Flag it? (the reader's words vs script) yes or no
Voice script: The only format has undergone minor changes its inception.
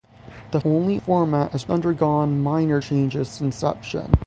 no